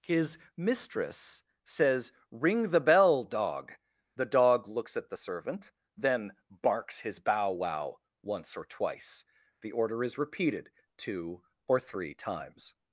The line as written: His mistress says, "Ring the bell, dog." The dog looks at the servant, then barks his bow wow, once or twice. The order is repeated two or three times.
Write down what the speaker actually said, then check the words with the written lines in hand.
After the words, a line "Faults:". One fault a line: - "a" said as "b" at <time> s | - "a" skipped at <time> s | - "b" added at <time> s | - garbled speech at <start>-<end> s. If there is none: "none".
His mistress says, "Ring the bell, dog." The dog looks at the servant, then barks his bow wow, once or twice. The order is repeated two or three times.
Faults:
none